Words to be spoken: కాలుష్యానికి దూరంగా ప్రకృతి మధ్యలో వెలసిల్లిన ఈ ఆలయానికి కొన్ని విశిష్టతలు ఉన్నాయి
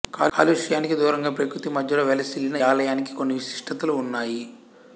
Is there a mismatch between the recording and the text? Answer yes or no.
yes